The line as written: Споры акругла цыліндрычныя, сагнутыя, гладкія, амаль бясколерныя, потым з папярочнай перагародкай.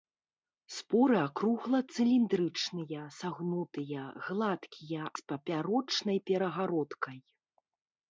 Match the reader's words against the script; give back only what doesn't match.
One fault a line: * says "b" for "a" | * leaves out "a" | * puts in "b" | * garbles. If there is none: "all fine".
* leaves out "амаль бясколерныя потым"